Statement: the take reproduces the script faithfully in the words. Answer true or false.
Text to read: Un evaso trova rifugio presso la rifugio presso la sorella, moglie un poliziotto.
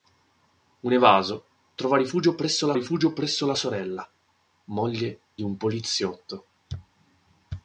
true